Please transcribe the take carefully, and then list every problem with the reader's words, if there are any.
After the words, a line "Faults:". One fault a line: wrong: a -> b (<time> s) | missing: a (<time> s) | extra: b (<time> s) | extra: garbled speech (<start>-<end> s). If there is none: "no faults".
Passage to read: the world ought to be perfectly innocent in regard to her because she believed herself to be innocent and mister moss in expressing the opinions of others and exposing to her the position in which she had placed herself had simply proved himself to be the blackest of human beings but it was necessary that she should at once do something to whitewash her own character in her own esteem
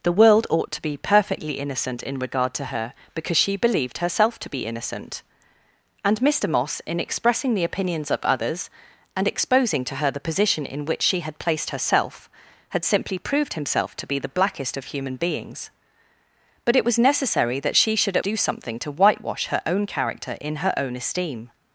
the world ought to be perfectly innocent in regard to her because she believed herself to be innocent and mister moss in expressing the opinions of others and exposing to her the position in which she had placed herself had simply proved himself to be the blackest of human beings but it was necessary that she should at do something to whitewash her own character in her own esteem
Faults:
missing: once (18.2 s)